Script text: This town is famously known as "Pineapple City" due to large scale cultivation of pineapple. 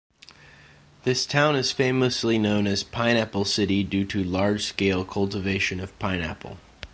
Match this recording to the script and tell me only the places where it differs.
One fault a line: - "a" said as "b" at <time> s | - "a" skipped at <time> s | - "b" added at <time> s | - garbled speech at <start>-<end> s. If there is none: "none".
none